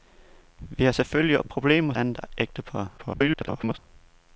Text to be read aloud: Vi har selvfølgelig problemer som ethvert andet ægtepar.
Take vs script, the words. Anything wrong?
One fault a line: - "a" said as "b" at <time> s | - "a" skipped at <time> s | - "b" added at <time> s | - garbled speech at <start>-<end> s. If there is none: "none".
- "som ethvert" skipped at 1.9 s
- garbled speech at 3.0-3.8 s